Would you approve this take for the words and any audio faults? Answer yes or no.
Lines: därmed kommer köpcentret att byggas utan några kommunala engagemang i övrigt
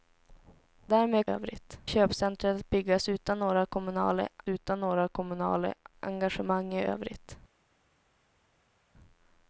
no